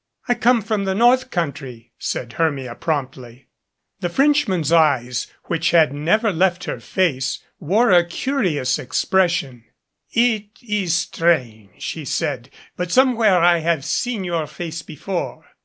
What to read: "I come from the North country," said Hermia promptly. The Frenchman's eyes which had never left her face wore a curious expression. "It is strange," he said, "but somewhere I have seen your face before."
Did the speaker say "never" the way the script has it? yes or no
yes